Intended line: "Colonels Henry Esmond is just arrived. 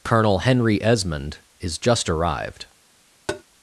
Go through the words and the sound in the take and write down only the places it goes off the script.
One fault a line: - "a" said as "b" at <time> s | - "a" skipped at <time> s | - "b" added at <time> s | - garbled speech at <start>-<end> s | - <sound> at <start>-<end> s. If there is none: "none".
- "Colonels" said as "Colonel" at 0.0 s
- tap at 3.3-3.4 s